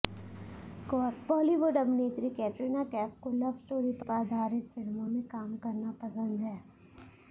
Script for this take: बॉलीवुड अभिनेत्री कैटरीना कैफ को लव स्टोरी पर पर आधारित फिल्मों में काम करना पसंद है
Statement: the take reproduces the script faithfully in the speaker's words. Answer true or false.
true